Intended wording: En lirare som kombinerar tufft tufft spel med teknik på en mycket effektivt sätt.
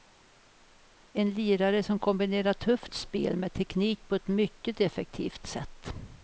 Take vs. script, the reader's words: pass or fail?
fail